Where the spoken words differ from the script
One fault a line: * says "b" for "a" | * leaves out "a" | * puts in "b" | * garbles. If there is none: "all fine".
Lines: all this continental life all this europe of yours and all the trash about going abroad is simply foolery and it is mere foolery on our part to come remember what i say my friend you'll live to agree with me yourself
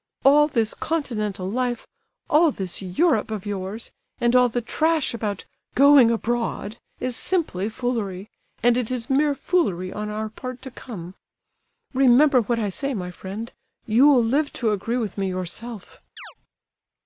all fine